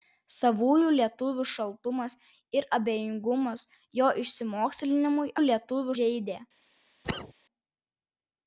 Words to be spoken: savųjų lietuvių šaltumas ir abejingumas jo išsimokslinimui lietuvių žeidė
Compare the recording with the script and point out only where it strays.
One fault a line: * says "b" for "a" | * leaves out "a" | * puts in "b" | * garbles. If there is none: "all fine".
all fine